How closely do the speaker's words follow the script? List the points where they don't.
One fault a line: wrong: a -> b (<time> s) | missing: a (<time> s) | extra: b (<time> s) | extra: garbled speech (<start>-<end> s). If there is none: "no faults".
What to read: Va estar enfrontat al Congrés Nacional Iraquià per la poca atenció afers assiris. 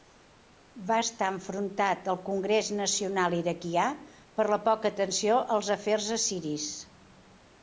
extra: als (5.6 s)